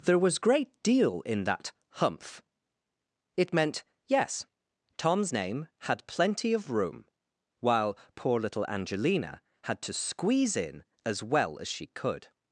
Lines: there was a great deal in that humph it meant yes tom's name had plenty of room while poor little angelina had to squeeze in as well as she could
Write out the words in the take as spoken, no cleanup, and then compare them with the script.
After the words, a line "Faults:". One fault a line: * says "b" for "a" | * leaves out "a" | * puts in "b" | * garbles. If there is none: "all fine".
there was great deal in that humph it meant yes tom's name had plenty of room while poor little angelina had to squeeze in as well as she could
Faults:
* leaves out "a"